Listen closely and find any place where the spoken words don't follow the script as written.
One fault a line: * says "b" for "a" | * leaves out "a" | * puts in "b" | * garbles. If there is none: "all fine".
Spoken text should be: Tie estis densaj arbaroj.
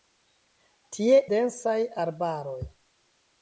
* leaves out "estis"